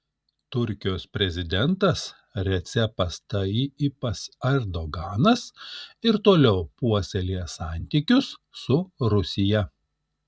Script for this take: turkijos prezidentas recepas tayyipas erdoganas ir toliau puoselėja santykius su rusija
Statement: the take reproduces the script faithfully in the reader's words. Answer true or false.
true